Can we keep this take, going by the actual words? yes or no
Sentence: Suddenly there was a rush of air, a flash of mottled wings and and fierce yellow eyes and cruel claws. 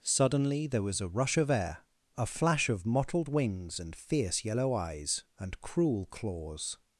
no